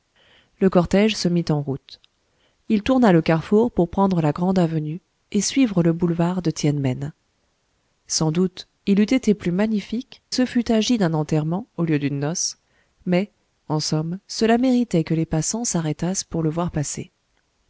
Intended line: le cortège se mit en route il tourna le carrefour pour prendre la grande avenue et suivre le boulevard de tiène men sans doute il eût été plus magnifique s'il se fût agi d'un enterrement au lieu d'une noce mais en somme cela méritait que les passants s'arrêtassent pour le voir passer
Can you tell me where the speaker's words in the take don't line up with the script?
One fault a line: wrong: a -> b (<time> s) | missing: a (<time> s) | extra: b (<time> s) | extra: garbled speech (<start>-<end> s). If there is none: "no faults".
missing: s'il (10.2 s)